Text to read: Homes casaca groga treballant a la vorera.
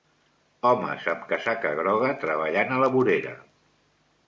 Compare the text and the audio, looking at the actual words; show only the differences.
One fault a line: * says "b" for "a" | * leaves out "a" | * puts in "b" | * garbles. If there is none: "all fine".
* puts in "amb"